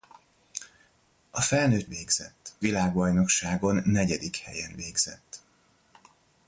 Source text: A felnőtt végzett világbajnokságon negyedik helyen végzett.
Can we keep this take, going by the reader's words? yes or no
yes